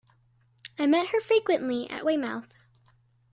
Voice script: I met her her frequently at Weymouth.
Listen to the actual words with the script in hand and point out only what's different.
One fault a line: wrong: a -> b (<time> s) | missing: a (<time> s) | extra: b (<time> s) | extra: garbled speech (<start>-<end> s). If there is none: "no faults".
missing: her (1.2 s)